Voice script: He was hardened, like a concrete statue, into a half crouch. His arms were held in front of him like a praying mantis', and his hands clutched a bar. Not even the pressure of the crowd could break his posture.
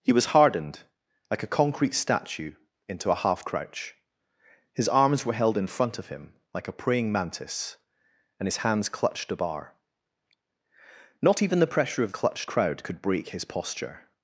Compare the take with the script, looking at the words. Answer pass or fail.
fail